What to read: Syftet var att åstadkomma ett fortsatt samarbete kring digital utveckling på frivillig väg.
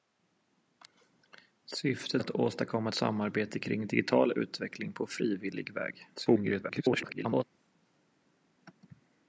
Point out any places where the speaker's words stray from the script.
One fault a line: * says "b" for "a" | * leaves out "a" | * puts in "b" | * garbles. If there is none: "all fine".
* leaves out "var"
* leaves out "ett fortsatt"
* garbles